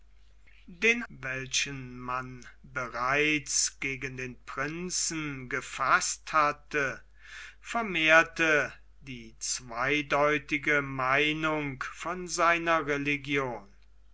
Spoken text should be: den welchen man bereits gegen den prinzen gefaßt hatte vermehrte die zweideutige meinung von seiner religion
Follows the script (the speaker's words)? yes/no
yes